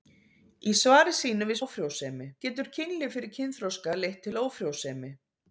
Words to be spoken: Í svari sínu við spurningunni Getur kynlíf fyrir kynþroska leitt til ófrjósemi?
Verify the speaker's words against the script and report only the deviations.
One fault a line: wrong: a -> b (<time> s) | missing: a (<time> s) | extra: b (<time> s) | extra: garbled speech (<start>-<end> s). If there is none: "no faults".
wrong: spurningunni -> ófrjósemi (1.6 s)